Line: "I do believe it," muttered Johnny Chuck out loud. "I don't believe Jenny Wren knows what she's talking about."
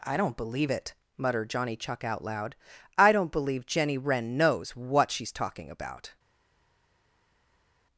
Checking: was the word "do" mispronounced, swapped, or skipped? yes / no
yes